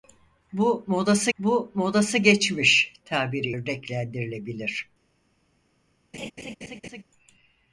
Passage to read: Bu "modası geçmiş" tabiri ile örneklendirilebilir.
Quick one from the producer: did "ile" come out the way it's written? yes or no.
no